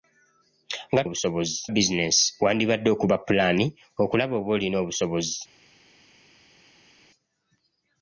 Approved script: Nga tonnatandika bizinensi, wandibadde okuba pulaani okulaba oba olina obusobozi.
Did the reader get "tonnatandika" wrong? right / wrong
wrong